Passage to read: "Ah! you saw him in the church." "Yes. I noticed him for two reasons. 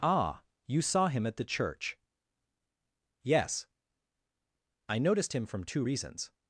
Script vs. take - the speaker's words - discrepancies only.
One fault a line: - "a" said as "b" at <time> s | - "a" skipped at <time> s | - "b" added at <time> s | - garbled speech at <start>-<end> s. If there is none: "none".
- "in" said as "at" at 1.3 s
- "for" said as "from" at 5.5 s